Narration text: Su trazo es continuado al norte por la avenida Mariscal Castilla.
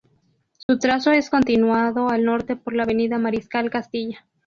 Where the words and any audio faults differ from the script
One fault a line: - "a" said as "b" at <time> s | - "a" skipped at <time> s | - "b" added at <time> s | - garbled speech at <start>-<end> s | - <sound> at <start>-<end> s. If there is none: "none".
- dropout at 0.6-0.7 s